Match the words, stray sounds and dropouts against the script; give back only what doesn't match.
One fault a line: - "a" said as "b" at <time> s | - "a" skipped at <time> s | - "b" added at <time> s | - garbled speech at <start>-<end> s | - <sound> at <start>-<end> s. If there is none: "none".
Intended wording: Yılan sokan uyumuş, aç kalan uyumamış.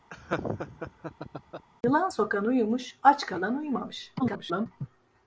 - laugh at 0.1-1.7 s
- garbled speech at 4.2-4.7 s